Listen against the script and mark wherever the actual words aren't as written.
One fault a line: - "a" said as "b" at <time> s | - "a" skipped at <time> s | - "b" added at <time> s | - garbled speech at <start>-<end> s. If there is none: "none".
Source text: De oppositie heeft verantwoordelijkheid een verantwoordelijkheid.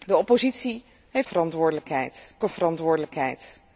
none